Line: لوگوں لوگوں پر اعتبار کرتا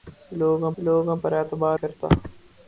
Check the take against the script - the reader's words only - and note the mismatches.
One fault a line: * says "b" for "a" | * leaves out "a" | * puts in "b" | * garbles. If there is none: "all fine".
all fine